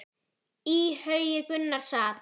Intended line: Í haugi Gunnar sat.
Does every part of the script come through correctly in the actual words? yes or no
yes